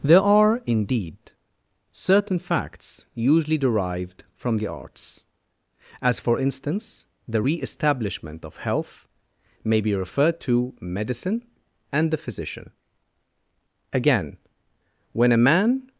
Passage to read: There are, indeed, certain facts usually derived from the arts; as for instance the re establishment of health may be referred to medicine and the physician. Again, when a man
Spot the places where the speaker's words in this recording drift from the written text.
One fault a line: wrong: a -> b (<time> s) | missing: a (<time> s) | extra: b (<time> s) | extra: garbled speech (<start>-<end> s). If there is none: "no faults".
no faults